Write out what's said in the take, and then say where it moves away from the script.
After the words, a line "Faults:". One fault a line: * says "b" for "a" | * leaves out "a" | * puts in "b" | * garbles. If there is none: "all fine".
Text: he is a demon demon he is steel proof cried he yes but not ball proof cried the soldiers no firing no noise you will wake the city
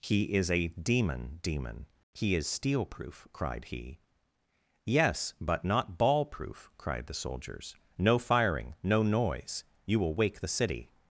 he is a demon demon he is steel proof cried he yes but not ball proof cried the soldiers no firing no noise you will wake the city
Faults:
all fine